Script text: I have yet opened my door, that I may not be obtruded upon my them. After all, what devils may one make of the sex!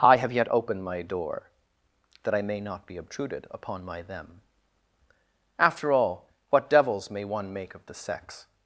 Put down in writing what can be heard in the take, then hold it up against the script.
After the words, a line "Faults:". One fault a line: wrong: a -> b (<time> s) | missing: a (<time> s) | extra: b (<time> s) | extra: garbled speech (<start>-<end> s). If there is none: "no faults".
I have yet opened my door, that I may not be obtruded upon my them. After all, what devils may one make of the sex!
Faults:
no faults